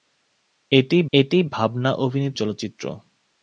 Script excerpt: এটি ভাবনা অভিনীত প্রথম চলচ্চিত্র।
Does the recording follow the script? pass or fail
fail